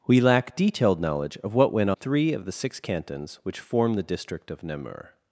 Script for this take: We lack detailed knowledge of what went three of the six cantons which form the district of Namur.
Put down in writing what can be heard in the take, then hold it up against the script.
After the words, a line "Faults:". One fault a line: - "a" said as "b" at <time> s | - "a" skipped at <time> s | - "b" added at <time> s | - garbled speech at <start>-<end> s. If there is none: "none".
We lack detailed knowledge of what went three of the six cantons which form the district of Namur.
Faults:
none